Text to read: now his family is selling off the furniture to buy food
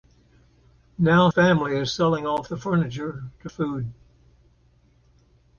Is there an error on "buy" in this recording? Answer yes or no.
yes